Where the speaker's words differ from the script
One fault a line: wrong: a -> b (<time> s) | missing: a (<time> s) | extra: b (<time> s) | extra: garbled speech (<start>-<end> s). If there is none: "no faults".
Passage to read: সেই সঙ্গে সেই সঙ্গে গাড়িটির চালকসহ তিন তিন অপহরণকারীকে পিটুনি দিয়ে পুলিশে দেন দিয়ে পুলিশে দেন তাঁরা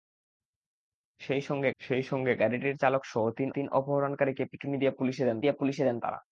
no faults